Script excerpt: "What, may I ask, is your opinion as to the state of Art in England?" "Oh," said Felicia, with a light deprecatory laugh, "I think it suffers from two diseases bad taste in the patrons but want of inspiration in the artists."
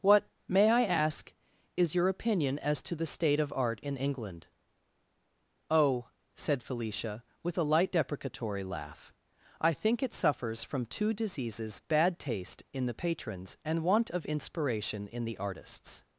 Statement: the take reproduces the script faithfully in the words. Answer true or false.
false